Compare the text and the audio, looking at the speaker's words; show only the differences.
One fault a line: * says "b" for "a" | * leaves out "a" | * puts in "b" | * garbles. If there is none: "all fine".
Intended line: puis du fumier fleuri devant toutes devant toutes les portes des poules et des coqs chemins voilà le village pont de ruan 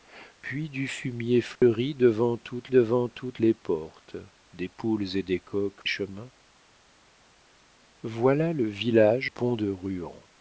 all fine